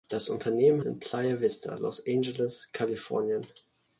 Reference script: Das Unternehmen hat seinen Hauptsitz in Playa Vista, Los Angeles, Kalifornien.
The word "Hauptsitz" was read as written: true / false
false